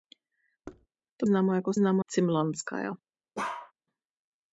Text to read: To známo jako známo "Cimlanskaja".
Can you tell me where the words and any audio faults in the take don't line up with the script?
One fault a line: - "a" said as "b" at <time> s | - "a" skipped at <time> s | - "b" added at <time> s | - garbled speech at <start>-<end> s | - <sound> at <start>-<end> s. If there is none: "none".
- thud at 0.6-0.9 s
- bark at 3.4-3.7 s